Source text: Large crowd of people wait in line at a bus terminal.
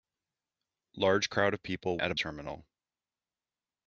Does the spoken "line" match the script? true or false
false